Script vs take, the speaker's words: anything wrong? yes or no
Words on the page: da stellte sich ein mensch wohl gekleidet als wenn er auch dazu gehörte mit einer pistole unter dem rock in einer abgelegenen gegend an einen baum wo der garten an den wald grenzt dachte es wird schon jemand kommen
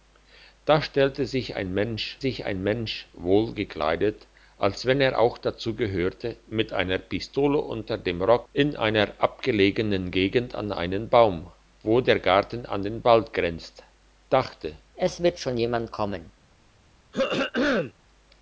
yes